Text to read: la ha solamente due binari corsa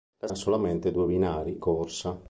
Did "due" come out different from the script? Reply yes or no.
no